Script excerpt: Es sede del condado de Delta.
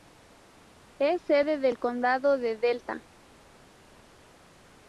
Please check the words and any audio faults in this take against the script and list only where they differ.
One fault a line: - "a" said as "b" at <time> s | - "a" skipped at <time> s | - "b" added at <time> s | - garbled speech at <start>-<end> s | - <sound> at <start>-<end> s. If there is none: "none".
none